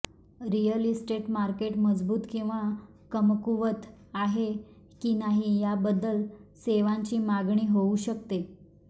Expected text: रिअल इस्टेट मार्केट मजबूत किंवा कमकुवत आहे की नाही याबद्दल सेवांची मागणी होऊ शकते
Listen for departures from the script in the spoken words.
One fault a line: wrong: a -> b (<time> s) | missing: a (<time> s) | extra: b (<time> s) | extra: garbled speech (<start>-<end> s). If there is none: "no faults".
no faults